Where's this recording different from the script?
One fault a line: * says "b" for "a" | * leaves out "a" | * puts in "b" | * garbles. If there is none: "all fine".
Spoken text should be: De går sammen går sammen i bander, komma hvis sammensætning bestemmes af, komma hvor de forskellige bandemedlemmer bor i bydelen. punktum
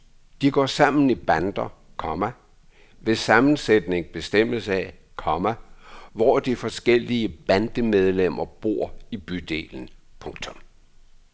* leaves out "går sammen"